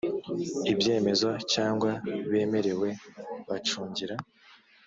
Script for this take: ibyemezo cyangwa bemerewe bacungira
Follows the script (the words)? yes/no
yes